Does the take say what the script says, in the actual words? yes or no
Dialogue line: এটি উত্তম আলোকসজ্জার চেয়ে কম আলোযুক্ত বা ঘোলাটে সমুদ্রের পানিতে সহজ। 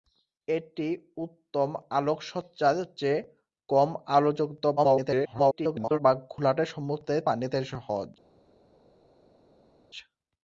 no